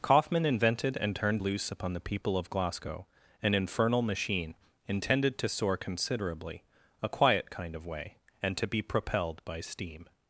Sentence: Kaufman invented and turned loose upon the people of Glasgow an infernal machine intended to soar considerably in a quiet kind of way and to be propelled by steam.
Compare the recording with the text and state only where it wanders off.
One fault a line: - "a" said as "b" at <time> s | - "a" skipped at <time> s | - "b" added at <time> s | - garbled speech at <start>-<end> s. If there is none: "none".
- "in" skipped at 6.6 s